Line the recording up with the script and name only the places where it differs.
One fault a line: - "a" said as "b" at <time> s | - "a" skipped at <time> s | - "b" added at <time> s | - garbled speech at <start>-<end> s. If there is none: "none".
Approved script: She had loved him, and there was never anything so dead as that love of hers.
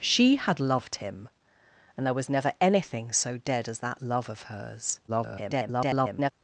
- garbled speech at 5.1-6.3 s